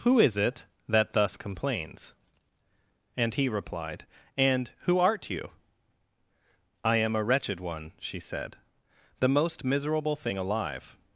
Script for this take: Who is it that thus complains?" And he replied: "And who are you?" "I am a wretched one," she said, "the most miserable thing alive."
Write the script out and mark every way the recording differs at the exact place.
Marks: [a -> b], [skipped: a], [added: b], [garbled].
Who is it that thus complains?" And he replied: "And who [are -> art] you?" "I am a wretched one," she said, "the most miserable thing alive."